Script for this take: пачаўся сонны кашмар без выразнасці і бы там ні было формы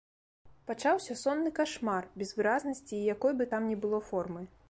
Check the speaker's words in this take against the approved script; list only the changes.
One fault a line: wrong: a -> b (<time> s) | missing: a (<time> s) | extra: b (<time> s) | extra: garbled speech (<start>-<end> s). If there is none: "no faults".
extra: якой (3.1 s)